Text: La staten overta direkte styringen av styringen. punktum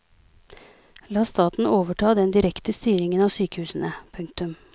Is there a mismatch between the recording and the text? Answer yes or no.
yes